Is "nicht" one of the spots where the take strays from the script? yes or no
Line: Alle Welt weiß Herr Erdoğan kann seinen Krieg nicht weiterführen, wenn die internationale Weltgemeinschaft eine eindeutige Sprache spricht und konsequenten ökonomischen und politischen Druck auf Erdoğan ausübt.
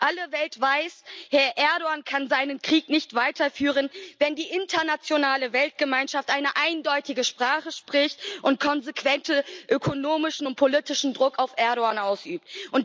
no